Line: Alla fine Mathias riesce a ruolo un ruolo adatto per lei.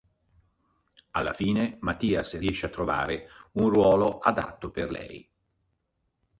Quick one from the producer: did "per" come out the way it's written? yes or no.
yes